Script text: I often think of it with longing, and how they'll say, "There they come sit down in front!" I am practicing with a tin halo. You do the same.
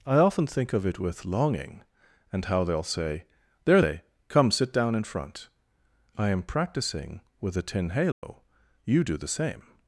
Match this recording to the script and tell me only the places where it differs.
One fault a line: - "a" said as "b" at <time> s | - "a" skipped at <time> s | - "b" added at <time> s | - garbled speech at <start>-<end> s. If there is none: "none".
none